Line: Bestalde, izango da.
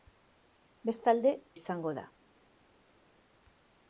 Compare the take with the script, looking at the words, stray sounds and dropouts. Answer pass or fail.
pass